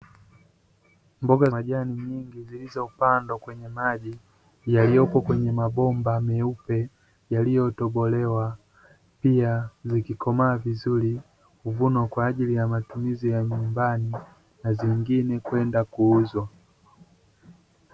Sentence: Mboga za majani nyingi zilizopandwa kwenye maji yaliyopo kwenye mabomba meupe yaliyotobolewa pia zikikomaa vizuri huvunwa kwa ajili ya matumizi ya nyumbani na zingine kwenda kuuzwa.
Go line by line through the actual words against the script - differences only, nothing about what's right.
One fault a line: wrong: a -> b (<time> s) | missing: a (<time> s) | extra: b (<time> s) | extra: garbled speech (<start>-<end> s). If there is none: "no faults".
missing: za (1.5 s)